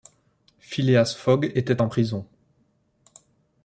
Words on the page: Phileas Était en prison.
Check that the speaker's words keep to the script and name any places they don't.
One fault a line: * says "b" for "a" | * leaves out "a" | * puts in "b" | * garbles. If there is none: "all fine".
* puts in "Fogg"